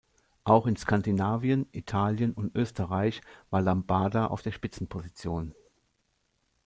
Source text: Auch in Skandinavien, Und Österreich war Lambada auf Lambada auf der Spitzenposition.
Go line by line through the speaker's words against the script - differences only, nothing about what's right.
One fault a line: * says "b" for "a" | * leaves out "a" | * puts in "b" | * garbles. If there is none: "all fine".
* puts in "Italien"
* leaves out "Lambada auf"